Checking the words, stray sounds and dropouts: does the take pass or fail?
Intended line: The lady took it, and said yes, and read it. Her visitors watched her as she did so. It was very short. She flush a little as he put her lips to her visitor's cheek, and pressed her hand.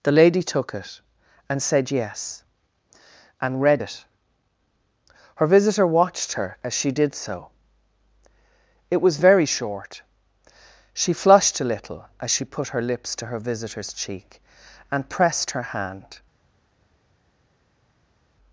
fail